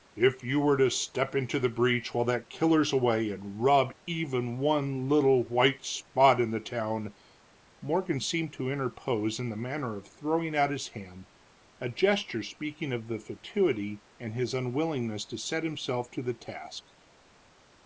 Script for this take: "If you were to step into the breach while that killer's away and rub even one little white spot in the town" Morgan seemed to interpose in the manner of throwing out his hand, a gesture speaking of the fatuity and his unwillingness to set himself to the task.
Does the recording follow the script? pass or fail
pass